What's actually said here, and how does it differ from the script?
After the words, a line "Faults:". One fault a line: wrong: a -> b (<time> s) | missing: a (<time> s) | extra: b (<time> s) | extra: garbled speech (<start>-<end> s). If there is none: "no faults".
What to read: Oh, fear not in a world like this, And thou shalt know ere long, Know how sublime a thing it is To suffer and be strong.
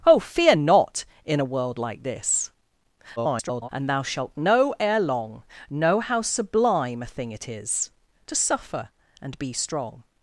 Oh, fear not in a world like this, [garbled] And thou shalt know ere long, Know how sublime a thing it is To suffer and be strong.
Faults:
extra: garbled speech (3.2-3.7 s)